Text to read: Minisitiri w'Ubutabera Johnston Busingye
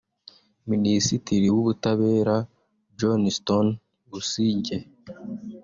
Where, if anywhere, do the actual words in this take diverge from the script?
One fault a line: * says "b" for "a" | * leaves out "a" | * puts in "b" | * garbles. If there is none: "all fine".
all fine